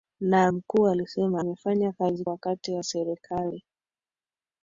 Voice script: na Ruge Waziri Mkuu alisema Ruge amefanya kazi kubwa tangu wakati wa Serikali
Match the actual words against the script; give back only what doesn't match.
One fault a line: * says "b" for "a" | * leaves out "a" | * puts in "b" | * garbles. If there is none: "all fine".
* leaves out "Ruge Waziri"
* leaves out "Ruge"
* leaves out "kubwa tangu"